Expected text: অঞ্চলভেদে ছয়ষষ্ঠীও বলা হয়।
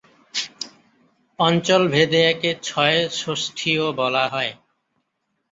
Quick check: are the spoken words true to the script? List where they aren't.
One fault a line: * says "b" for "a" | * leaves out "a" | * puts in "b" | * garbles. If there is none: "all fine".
* puts in "একে"